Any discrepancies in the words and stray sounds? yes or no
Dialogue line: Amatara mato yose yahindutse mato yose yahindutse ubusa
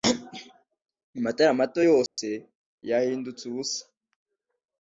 yes